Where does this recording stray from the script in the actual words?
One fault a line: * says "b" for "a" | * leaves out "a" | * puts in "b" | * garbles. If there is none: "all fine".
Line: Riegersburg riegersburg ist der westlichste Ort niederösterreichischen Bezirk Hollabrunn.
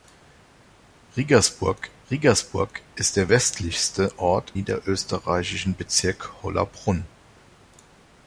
all fine